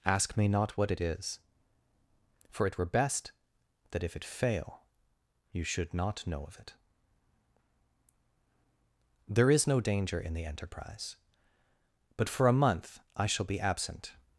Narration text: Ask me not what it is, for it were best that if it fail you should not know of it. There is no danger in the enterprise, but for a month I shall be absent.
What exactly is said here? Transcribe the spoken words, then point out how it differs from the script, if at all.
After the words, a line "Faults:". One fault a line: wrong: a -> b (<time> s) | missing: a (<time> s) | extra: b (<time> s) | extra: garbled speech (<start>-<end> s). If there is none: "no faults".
Ask me not what it is, for it were best that if it fail you should not know of it. There is no danger in the enterprise, but for a month I shall be absent.
Faults:
no faults